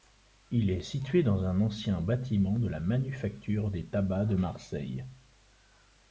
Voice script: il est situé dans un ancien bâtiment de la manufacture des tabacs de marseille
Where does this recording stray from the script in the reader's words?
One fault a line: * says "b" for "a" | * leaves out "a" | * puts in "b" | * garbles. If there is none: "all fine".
all fine